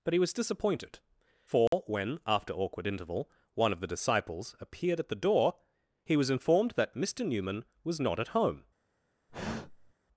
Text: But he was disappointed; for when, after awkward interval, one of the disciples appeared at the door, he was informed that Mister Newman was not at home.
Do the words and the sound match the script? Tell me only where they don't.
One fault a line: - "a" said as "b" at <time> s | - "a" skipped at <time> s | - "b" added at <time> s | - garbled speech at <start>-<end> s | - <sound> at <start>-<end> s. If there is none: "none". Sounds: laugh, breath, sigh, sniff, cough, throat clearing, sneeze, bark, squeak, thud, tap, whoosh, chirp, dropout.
- dropout at 1.7-1.7 s
- sigh at 9.3-9.9 s